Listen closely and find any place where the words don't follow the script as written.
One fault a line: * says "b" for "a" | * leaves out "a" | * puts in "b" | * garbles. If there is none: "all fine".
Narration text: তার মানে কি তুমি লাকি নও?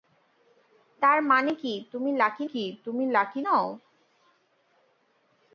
* puts in "কি তুমি লাকি"